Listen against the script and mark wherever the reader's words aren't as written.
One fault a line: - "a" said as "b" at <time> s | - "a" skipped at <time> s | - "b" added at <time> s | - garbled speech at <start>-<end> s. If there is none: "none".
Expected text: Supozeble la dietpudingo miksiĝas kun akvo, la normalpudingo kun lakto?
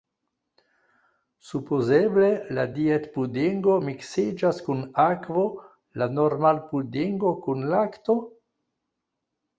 none